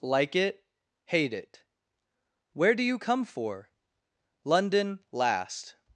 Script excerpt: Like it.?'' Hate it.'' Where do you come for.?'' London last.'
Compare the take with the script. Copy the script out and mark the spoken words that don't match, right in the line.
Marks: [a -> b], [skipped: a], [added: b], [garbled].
Like it.?'' Hate it.'' Where do you come for.?'' London last.'